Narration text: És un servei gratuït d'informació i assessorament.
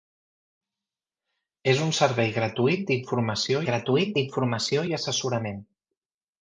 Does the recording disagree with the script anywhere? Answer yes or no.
yes